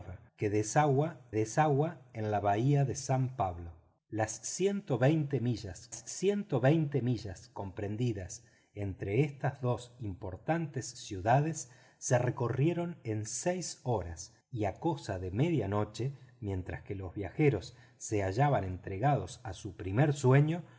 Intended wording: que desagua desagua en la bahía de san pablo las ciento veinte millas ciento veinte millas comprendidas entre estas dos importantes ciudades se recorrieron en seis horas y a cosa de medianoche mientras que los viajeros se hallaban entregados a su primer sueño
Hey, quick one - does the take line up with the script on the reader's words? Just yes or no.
yes